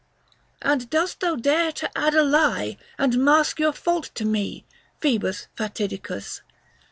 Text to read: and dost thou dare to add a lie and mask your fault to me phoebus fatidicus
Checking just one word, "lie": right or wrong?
right